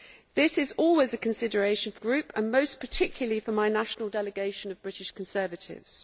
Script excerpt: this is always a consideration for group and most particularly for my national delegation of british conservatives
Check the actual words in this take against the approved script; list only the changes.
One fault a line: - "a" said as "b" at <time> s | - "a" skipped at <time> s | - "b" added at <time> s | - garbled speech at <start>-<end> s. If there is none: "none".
none